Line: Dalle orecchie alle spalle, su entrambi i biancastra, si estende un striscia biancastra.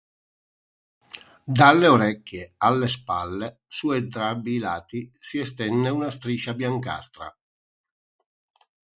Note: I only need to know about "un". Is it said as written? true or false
false